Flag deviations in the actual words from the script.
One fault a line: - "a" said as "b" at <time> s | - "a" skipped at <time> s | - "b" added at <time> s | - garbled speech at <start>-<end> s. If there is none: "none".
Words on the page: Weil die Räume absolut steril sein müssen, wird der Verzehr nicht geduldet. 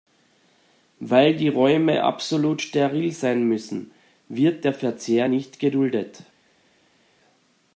none